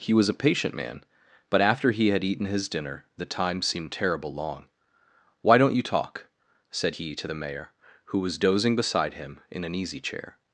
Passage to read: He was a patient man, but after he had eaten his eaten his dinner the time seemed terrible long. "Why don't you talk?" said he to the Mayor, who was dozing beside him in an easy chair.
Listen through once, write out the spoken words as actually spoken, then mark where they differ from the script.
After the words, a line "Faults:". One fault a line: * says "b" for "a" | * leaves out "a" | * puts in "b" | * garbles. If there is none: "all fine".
He was a patient man, but after he had eaten his dinner the time seemed terrible long. "Why don't you talk?" said he to the Mayor, who was dozing beside him in an easy chair.
Faults:
* leaves out "eaten his"